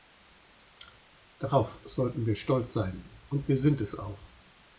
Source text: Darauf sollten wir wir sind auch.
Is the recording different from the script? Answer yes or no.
yes